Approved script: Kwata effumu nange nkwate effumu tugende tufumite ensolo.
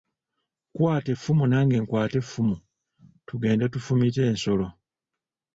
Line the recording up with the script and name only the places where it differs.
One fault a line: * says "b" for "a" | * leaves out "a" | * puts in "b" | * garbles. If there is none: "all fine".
all fine